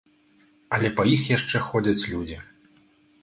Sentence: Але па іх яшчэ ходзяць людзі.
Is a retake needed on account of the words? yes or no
no